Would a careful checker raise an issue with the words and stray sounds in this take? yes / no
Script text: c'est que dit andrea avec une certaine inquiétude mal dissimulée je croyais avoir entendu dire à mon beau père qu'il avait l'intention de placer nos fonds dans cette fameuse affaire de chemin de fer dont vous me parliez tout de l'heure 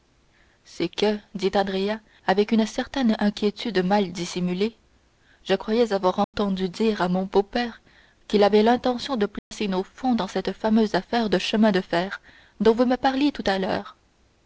yes